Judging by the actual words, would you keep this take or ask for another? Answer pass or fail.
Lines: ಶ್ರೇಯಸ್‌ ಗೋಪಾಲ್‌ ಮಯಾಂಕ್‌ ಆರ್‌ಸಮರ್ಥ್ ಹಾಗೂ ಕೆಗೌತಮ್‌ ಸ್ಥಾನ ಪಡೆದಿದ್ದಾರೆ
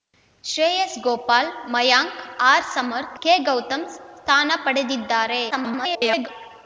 fail